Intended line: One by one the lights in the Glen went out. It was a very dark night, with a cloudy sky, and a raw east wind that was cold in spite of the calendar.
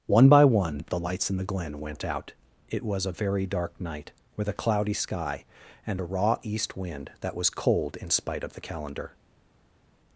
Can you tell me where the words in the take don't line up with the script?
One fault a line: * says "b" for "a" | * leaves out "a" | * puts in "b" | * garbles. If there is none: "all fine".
all fine